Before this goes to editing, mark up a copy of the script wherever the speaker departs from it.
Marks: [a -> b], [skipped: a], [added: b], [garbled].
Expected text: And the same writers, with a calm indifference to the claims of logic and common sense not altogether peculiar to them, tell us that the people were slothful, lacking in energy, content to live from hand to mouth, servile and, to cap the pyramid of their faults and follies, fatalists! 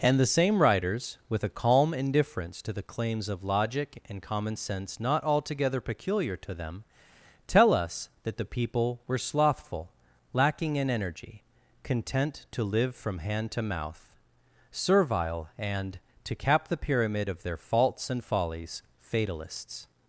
And the same writers, with a calm indifference to the claims of logic and common sense not altogether peculiar to them, tell us that the people were slothful, lacking in energy, content to live from hand to mouth, servile and, to cap the pyramid of their faults and follies, fatalists!